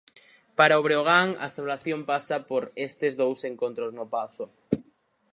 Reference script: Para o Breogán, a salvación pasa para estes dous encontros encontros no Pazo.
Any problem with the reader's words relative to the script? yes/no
yes